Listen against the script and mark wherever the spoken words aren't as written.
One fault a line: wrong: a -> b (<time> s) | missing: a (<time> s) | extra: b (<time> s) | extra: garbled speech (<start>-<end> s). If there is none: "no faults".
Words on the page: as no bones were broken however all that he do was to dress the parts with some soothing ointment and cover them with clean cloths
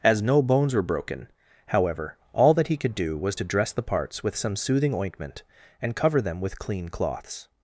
extra: could (2.8 s)